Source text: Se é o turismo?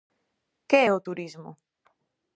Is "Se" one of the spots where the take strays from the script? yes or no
yes